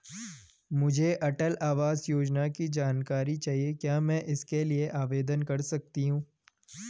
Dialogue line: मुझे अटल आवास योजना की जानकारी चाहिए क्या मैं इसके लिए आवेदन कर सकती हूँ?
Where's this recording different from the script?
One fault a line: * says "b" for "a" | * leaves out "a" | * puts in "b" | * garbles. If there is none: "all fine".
all fine